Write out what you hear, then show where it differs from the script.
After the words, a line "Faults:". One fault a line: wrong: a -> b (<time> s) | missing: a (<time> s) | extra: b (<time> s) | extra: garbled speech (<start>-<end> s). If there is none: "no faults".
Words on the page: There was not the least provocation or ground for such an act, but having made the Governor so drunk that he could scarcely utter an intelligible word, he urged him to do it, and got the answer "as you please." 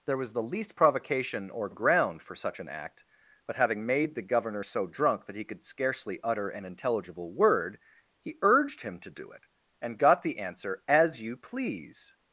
There was the least provocation or ground for such an act, but having made the Governor so drunk that he could scarcely utter an intelligible word, he urged him to do it, and got the answer "as you please."
Faults:
missing: not (0.3 s)